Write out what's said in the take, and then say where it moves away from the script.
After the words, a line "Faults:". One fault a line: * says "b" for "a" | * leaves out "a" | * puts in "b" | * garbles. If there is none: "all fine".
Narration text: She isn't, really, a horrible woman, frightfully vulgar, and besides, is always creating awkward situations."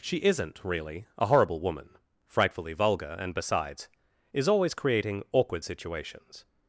She isn't, really, a horrible woman, frightfully vulgar, and besides, is always creating awkward situations."
Faults:
all fine